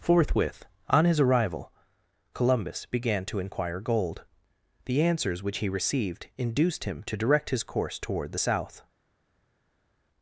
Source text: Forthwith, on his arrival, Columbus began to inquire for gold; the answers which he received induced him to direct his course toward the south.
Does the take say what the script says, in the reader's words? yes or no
no